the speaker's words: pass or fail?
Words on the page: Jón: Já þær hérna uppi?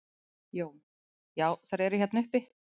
fail